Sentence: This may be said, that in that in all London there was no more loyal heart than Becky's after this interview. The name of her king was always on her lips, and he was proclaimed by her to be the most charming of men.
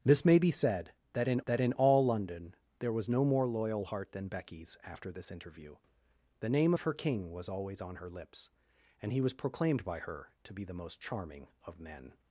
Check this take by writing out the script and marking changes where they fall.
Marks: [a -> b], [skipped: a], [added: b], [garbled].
This may be said, that in that in all London there was no more loyal heart than Becky's after this interview. The name of her king was always on her lips, and he was proclaimed by her to be the most charming of men.